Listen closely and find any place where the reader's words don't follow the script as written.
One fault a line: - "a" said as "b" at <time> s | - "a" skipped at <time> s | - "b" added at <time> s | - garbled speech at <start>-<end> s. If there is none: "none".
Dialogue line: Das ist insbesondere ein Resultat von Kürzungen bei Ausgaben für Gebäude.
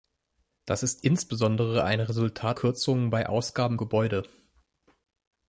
- "von" skipped at 2.6 s
- "für" skipped at 3.8 s